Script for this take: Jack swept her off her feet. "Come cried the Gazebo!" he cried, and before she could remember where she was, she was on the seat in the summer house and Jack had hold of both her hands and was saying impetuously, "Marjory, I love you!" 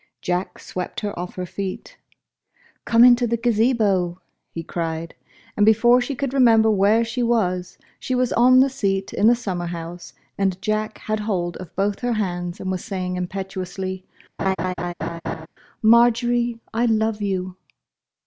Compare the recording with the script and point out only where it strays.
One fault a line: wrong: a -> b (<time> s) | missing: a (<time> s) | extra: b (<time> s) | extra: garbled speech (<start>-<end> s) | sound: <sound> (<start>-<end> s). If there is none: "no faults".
wrong: cried -> into (3.0 s)
sound: laugh (14.4-15.5 s)